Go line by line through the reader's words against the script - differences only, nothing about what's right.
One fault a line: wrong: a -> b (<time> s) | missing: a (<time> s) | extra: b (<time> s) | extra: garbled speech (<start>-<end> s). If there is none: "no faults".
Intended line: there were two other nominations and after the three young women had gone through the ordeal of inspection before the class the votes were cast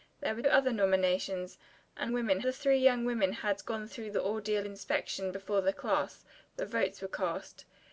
missing: two (0.4 s)
wrong: after -> women (2.1 s)
missing: of (4.7 s)